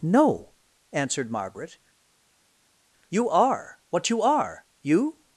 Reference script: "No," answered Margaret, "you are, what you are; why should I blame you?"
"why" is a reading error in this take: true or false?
true